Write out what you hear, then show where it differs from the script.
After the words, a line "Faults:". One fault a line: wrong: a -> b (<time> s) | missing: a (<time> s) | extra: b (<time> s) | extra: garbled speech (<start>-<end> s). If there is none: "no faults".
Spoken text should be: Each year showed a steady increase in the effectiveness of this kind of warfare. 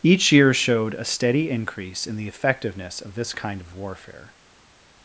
Each year showed a steady increase in the effectiveness of this kind of warfare.
Faults:
no faults